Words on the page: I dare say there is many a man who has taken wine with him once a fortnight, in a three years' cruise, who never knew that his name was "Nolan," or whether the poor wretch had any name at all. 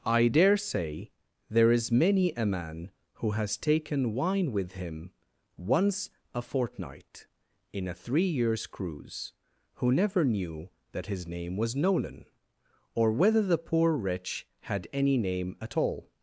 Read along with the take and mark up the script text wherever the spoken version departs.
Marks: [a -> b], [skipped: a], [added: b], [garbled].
I dare say there is many a man who has taken wine with him once a fortnight, in a three years' cruise, who never knew that his name was "Nolan," or whether the poor wretch had any name at all.